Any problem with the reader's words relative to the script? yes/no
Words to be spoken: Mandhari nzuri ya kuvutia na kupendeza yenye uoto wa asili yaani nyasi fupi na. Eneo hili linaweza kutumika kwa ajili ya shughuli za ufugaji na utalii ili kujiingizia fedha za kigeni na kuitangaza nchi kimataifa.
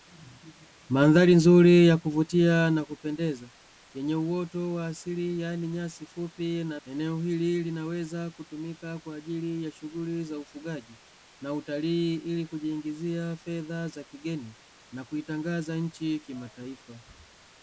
no